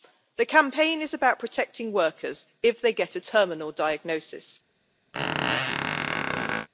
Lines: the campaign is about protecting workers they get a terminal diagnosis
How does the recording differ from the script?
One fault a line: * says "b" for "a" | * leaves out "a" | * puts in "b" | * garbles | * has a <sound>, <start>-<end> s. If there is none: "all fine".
* puts in "if"
* has a squeak, 5.1-6.7 s